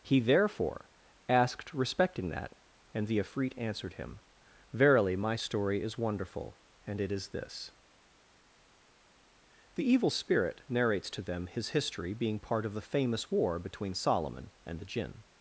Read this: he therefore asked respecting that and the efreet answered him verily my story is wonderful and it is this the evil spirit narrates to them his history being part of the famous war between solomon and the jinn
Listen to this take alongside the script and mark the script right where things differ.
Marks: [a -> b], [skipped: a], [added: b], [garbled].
he therefore asked respecting that and the efreet answered him verily my story is wonderful and it is this the evil spirit narrates to them his history being part of the famous war between solomon and the jinn